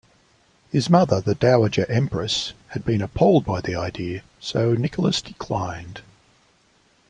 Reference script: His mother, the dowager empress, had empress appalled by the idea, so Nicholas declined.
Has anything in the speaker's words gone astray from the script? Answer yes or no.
yes